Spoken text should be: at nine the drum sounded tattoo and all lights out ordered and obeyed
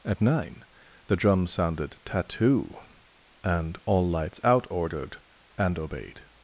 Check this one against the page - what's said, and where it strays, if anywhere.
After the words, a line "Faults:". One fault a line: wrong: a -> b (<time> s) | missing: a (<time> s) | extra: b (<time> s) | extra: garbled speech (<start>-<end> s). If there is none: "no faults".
at nine the drum sounded tattoo and all lights out ordered and obeyed
Faults:
no faults